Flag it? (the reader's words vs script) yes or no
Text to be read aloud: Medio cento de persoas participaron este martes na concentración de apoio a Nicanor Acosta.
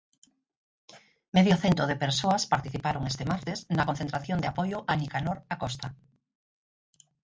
no